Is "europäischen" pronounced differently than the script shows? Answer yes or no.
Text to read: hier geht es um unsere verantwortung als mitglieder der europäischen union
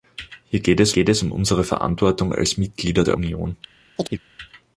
yes